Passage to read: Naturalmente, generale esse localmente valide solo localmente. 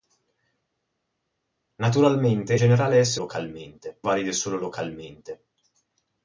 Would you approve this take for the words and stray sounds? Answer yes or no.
yes